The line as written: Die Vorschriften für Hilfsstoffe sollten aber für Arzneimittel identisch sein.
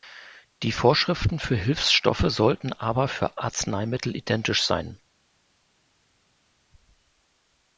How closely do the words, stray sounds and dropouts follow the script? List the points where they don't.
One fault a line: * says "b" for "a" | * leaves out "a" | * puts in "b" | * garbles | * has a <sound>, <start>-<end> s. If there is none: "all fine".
all fine